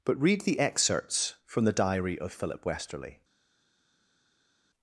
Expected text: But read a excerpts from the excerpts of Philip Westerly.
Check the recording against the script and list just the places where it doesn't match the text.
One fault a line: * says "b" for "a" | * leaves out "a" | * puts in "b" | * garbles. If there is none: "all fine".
* says "the" for "a"
* says "diary" for "excerpts"